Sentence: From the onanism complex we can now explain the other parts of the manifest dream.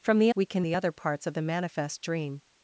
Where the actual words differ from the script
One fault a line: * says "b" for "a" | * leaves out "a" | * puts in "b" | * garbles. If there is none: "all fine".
* leaves out "onanism complex"
* leaves out "now explain"